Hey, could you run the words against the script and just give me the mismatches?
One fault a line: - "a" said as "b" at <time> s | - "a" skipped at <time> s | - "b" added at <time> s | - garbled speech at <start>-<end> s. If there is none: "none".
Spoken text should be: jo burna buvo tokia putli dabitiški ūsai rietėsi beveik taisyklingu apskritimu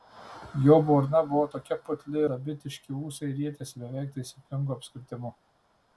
none